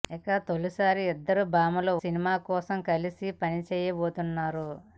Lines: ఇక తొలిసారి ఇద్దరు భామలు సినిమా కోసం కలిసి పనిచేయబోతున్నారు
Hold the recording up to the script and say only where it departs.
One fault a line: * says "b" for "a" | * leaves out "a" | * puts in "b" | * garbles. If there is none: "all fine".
all fine